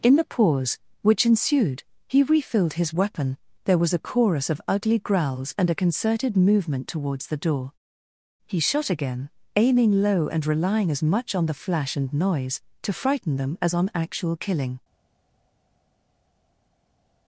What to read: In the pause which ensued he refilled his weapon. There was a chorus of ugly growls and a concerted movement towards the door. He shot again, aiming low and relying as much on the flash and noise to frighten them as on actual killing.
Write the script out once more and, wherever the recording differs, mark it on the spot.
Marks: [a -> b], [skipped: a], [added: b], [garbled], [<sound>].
In the pause which ensued he refilled his weapon. There was a chorus of ugly growls and a concerted movement towards the door. He shot again, aiming low and relying as much on the flash and noise to frighten them as on actual killing.